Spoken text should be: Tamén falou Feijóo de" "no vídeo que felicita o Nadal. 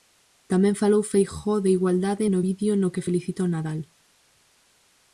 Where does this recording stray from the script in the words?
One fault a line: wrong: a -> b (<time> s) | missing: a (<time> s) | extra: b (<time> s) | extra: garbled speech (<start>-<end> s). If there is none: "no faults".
extra: igualdade (1.8 s)
extra: no (2.8 s)